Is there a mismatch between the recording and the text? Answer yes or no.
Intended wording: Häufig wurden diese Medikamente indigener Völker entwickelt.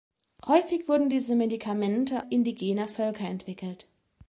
no